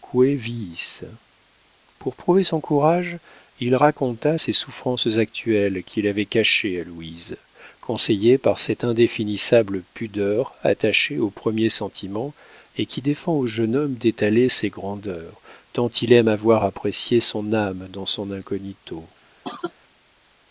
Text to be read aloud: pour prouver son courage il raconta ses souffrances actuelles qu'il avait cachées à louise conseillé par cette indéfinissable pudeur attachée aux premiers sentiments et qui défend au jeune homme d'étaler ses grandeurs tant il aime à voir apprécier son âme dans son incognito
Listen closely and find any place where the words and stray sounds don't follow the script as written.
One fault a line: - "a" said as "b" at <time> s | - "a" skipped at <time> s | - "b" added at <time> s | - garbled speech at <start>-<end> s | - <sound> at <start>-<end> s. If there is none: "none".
- cough at 19.4-19.7 s